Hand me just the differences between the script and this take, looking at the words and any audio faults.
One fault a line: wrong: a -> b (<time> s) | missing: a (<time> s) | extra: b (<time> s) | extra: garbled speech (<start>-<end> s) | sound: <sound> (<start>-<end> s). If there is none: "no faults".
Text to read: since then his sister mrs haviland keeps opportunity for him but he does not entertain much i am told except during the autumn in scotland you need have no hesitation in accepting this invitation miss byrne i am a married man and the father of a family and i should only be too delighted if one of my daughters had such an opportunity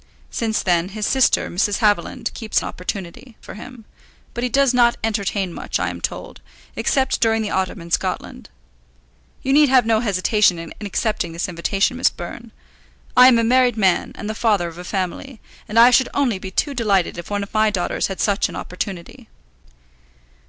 no faults